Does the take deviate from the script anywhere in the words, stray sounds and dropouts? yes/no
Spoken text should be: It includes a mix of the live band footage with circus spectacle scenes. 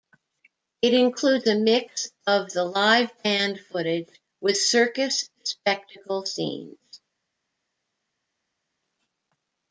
no